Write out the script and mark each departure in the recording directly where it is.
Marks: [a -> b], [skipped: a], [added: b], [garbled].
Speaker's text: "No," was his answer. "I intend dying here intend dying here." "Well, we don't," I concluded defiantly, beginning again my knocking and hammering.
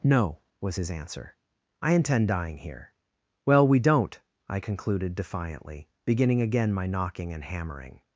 "No," was his answer. "I intend dying here [skipped: intend dying here."] "Well, we don't," I concluded defiantly, beginning again my knocking and hammering.